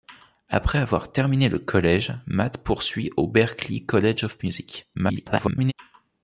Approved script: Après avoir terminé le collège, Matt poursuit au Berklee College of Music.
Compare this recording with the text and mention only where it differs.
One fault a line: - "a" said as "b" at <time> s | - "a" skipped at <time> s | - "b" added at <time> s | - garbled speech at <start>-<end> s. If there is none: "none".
- garbled speech at 4.9-5.7 s